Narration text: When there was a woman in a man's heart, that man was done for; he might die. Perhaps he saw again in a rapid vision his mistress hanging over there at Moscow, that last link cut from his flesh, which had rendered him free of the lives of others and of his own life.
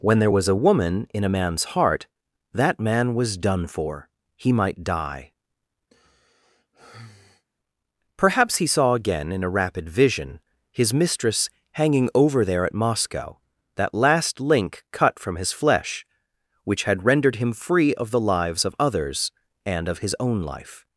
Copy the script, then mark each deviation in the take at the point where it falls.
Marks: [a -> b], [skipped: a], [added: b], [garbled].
When there was a woman in a man's heart, that man was done for; he might die. Perhaps he saw again in a rapid vision his mistress hanging over there at Moscow, that last link cut from his flesh, which had rendered him free of the lives of others and of his own life.